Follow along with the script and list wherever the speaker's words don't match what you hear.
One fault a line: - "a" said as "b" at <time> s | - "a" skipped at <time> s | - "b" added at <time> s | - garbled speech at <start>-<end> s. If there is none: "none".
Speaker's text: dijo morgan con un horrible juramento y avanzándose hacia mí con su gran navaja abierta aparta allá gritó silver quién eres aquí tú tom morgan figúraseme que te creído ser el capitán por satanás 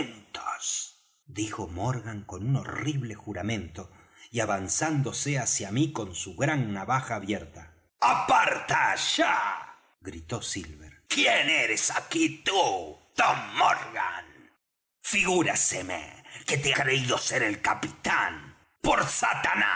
none